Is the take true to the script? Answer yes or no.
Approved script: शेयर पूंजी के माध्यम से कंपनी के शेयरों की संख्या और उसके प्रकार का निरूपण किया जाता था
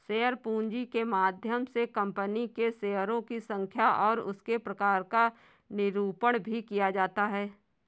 no